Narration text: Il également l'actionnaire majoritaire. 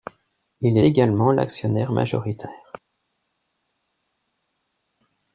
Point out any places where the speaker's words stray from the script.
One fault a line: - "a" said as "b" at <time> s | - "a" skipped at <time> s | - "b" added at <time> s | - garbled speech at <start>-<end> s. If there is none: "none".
none